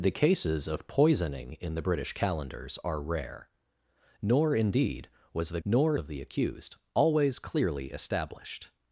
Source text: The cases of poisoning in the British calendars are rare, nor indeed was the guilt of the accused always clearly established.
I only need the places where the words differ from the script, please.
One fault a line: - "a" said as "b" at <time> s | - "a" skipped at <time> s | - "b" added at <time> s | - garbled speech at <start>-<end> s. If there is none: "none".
- "guilt" said as "nor" at 5.6 s